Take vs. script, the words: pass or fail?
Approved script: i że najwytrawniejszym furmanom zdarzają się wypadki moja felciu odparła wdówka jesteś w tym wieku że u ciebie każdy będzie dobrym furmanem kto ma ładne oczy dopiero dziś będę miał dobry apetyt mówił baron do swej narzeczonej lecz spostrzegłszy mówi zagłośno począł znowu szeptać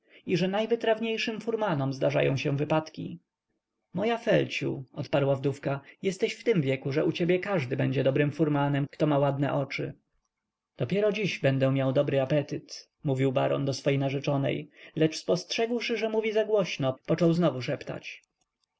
fail